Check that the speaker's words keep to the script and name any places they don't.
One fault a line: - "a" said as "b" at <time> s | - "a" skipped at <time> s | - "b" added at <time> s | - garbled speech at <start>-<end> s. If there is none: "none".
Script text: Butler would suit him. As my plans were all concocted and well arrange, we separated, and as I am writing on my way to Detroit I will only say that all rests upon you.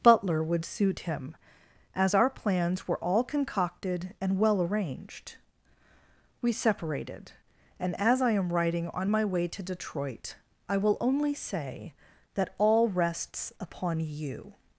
- "my" said as "our" at 2.1 s
- "arrange" said as "arranged" at 4.6 s